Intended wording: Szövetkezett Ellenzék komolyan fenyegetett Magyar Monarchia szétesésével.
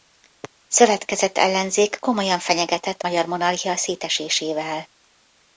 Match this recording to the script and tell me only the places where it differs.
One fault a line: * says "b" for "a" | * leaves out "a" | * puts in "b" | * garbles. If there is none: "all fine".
all fine